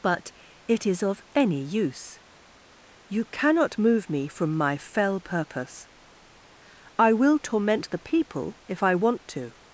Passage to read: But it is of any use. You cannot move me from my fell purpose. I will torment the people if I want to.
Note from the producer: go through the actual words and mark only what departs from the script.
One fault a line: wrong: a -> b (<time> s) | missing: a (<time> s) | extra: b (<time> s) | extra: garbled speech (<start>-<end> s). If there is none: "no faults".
no faults